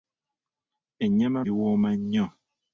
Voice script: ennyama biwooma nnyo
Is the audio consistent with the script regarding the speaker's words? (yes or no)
yes